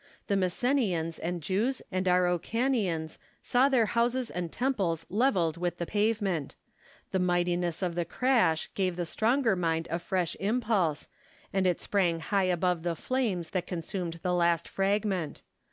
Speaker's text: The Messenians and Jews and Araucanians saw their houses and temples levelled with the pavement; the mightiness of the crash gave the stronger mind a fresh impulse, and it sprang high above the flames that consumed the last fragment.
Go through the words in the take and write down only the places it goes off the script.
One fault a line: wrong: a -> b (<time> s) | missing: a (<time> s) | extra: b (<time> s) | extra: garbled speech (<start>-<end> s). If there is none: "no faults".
no faults